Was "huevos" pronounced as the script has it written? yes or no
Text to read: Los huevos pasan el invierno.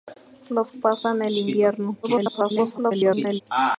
no